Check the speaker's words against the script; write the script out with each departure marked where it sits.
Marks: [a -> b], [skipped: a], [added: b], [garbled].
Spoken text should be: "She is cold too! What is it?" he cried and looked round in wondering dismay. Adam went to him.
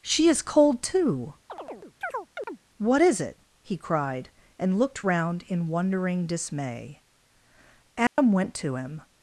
"She is cold too! What is it?" he cried and looked round in wondering dismay. Adam went to him.